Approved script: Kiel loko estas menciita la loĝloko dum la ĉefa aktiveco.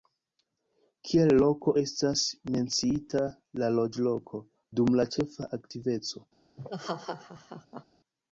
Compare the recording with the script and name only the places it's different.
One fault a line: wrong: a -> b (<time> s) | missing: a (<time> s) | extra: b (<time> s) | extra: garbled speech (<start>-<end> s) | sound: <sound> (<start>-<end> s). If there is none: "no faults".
sound: laugh (6.6-7.8 s)